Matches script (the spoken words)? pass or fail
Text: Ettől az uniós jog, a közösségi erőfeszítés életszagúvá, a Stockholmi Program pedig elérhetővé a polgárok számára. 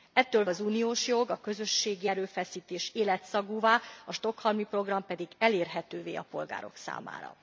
pass